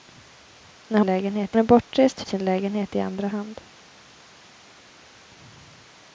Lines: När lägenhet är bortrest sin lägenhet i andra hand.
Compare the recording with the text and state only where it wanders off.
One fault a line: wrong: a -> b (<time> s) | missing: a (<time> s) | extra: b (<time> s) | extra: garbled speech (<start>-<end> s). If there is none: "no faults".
no faults